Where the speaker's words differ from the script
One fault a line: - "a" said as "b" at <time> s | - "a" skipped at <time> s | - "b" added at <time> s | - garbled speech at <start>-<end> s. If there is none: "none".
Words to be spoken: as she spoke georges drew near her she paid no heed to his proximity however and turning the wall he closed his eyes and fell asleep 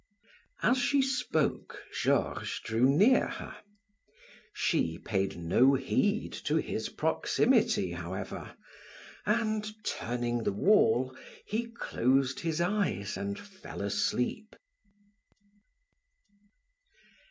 none